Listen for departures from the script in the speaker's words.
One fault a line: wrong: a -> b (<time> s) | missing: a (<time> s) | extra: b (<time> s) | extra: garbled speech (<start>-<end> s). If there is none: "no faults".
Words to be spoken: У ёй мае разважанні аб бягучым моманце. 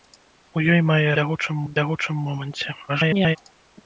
wrong: разважанні -> бягучым (1.2 s)
extra: garbled speech (2.9-3.4 s)